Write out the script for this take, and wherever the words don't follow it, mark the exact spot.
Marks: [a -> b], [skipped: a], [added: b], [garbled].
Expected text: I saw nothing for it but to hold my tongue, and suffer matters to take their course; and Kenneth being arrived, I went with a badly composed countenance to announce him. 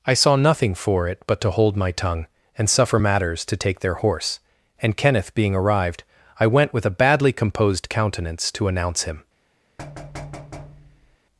I saw nothing for it but to hold my tongue, and suffer matters to take their [course; -> horse] and Kenneth being arrived, I went with a badly composed countenance to announce him.